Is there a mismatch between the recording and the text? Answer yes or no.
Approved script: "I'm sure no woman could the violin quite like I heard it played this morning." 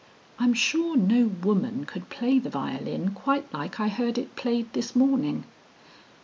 yes